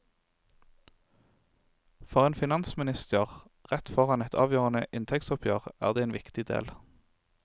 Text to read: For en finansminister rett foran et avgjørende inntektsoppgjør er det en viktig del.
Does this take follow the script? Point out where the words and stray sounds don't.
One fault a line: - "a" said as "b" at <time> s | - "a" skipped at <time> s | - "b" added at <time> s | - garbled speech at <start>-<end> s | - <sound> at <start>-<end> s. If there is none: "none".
none